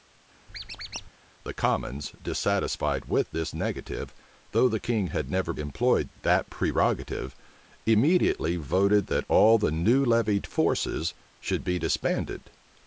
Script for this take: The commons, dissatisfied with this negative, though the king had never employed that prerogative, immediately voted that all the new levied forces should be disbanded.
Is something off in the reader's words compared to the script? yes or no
no